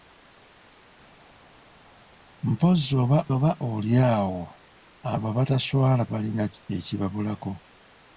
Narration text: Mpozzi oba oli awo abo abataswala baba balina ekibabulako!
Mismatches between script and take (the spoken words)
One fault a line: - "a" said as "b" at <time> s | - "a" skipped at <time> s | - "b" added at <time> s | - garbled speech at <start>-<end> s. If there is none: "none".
- "oba" added at 3.4 s
- "baba" skipped at 6.0 s